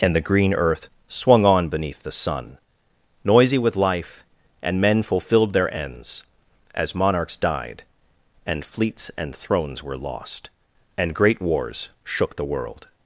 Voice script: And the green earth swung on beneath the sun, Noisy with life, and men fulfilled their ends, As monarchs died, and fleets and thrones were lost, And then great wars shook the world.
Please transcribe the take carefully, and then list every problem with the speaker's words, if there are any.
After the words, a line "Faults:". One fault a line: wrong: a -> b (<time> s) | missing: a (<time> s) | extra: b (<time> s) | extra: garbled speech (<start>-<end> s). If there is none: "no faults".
And the green earth swung on beneath the sun, Noisy with life, and men fulfilled their ends, As monarchs died, and fleets and thrones were lost, And great wars shook the world.
Faults:
missing: then (11.1 s)